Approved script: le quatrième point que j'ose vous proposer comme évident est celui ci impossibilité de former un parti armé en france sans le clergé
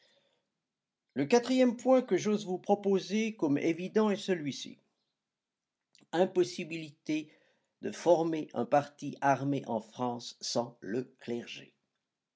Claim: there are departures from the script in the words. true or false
false